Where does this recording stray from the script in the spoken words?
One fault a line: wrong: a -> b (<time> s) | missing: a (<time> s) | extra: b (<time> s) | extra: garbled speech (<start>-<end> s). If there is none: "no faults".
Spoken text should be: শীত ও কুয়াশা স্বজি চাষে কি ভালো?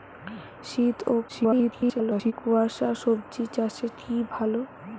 extra: garbled speech (1.3-2.3 s)